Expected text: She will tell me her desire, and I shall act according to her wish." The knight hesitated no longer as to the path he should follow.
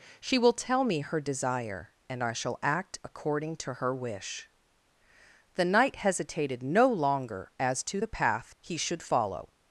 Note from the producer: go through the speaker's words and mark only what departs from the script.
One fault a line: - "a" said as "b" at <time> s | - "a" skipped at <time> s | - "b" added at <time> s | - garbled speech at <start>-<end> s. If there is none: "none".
none